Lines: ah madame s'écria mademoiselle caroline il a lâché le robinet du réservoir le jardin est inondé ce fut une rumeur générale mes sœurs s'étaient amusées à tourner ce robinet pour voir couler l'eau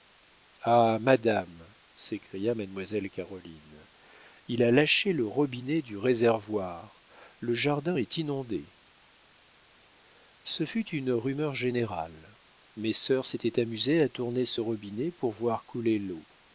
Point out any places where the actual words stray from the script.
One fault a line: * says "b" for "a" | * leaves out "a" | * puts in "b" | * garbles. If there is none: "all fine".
all fine